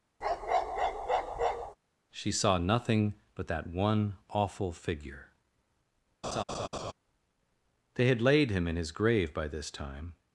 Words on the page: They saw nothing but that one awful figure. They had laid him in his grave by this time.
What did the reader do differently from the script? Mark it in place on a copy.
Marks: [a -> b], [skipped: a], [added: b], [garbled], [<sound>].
[bark] [They -> She] saw nothing but that one awful figure. [laugh] They had laid him in his grave by this time.